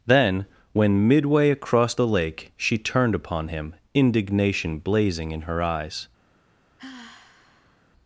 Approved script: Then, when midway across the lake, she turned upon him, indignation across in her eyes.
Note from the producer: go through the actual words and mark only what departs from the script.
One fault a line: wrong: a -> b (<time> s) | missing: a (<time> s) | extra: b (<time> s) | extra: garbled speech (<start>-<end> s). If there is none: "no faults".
wrong: across -> blazing (4.8 s)